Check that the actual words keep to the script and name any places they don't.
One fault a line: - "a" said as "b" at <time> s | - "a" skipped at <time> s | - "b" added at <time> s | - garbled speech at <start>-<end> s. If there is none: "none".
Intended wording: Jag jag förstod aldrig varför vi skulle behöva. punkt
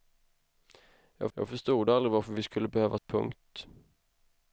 none